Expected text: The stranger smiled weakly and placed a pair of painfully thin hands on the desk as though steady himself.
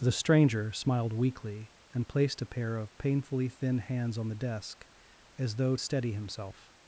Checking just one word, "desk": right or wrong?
right